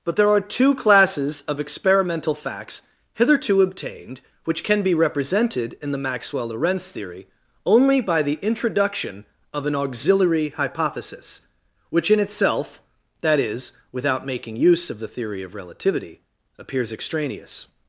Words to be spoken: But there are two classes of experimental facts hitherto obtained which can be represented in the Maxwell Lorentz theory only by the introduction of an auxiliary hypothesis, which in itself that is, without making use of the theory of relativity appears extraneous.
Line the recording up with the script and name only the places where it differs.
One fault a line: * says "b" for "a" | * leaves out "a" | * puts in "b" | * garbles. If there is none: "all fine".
all fine